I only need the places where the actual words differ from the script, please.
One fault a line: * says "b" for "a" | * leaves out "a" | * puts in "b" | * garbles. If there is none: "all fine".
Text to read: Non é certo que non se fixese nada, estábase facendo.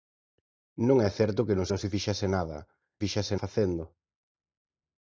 * puts in "non"
* says "fixese" for "estábase"